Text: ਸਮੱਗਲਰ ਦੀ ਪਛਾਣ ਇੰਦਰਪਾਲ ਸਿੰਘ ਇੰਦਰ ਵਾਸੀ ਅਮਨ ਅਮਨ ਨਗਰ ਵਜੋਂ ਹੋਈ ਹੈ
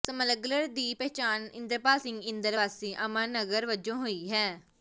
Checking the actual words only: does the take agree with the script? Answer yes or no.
no